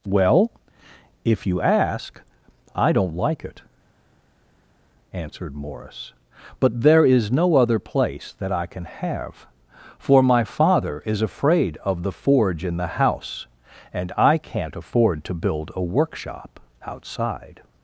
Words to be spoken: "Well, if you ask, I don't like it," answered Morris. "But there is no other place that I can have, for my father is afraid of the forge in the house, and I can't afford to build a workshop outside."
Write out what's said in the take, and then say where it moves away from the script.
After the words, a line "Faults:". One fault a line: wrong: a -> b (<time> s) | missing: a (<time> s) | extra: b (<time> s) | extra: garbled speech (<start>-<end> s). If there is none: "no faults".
"Well, if you ask, I don't like it," answered Morris. "But there is no other place that I can have, for my father is afraid of the forge in the house, and I can't afford to build a workshop outside."
Faults:
no faults